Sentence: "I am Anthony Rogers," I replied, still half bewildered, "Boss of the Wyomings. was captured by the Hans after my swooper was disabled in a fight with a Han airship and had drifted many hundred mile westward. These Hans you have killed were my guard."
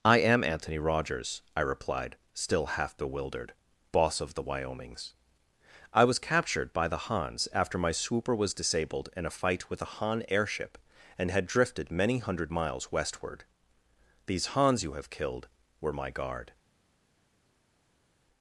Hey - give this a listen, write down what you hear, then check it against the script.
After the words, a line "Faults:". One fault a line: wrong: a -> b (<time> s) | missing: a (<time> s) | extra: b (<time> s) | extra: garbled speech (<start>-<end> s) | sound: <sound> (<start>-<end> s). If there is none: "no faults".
"I am Anthony Rogers," I replied, still half bewildered, "Boss of the Wyomings. I was captured by the Hans after my swooper was disabled in a fight with a Han airship and had drifted many hundred miles westward. These Hans you have killed were my guard."
Faults:
extra: I (5.9 s)
wrong: mile -> miles (12.5 s)